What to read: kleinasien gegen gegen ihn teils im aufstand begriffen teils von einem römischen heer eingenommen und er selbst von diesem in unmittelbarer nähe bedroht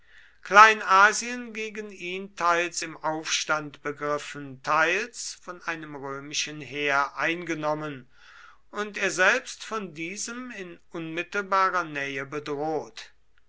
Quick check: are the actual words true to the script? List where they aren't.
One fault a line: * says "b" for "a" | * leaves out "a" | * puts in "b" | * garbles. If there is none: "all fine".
* leaves out "gegen"